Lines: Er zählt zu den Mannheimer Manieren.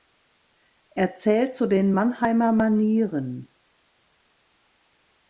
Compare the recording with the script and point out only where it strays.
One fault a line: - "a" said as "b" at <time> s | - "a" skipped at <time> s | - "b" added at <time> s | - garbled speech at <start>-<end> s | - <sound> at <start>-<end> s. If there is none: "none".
none